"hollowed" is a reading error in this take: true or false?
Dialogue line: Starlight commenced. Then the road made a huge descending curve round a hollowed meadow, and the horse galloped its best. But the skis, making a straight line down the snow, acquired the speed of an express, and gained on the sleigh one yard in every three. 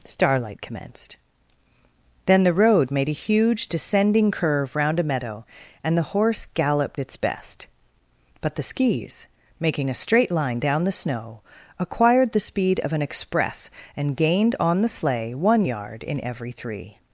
true